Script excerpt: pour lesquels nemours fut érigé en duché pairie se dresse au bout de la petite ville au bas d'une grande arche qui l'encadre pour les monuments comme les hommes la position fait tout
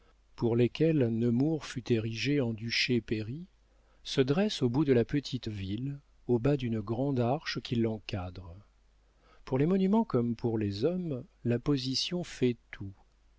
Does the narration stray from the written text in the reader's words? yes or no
yes